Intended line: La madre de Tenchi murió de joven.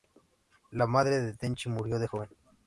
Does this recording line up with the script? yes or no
yes